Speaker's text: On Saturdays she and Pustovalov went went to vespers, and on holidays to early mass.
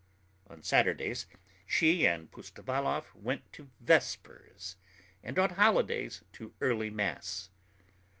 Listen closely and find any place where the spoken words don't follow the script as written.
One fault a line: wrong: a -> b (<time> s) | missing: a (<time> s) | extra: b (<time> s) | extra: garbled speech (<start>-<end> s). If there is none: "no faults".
missing: went (3.5 s)